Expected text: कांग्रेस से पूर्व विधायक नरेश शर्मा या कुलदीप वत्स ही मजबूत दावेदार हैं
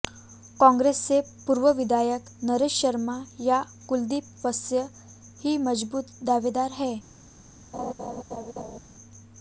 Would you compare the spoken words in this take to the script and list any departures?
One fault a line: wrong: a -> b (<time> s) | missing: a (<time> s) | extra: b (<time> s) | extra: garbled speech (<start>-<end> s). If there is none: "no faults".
no faults